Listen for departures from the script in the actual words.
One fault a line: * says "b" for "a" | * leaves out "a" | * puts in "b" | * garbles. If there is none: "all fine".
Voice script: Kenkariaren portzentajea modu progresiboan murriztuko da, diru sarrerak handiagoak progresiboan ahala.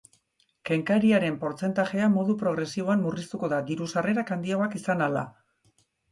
* says "izan" for "progresiboan"